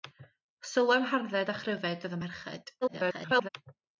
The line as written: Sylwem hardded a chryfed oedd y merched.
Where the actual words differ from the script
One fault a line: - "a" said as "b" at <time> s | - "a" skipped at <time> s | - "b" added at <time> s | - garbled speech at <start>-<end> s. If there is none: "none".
- garbled speech at 2.8-3.5 s